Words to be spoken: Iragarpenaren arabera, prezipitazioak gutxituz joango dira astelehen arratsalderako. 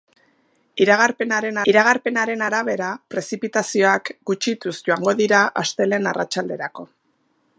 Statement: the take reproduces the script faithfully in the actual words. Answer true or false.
false